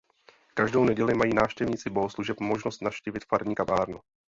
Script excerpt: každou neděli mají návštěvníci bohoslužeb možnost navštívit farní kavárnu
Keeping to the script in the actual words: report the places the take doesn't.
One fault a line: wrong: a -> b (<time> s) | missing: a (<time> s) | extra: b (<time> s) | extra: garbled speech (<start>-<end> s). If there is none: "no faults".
no faults